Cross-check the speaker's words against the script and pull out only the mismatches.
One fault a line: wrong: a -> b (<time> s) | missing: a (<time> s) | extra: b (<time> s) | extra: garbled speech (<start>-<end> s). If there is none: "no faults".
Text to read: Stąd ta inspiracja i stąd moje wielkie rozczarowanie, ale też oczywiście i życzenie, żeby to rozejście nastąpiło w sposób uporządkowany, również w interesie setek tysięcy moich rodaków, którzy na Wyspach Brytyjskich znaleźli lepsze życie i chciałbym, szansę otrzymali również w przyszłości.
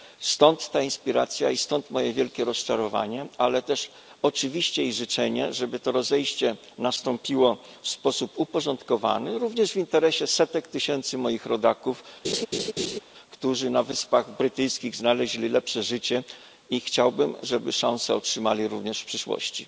extra: żeby (17.4 s)